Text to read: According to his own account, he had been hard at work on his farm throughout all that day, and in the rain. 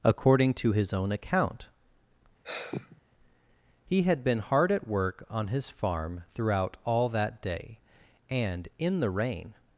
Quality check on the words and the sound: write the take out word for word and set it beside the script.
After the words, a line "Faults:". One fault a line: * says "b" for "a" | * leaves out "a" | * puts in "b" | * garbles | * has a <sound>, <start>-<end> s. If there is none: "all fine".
According to his own account, he had been hard at work on his farm throughout all that day, and in the rain.
Faults:
* has a sigh, 2.4-3.0 s